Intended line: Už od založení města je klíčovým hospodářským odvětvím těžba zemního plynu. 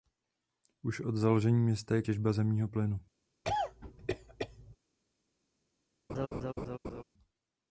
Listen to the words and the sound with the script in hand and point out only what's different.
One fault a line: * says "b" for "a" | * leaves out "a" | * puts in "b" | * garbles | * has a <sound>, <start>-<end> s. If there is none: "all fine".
* leaves out "klíčovým hospodářským odvětvím"
* has a cough, 3.4-4.8 s
* has a laugh, 6.1-7.0 s